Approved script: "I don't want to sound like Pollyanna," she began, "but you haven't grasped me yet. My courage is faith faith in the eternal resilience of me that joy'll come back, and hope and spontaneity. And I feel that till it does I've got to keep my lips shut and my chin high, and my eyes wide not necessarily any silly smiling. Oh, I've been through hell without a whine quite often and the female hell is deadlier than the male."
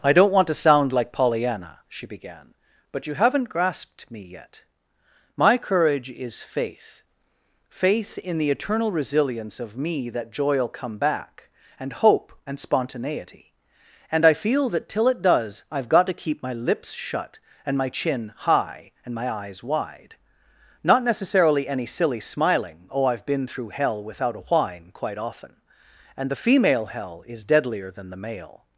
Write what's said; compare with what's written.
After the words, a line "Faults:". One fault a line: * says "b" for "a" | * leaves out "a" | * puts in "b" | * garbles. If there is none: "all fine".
"I don't want to sound like Pollyanna," she began, "but you haven't grasped me yet. My courage is faith faith in the eternal resilience of me that joy'll come back, and hope and spontaneity. And I feel that till it does I've got to keep my lips shut and my chin high, and my eyes wide not necessarily any silly smiling. Oh, I've been through hell without a whine quite often and the female hell is deadlier than the male."
Faults:
all fine